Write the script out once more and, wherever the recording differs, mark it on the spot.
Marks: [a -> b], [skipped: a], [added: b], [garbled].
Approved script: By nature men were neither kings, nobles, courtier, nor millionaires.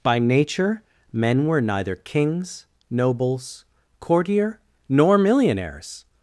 By nature men were neither kings, nobles, courtier, nor millionaires.